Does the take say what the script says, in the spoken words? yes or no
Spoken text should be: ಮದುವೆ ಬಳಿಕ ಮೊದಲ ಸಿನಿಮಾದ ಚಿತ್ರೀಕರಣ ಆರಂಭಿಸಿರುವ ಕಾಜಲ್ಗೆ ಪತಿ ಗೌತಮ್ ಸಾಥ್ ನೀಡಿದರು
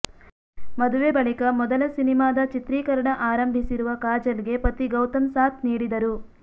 yes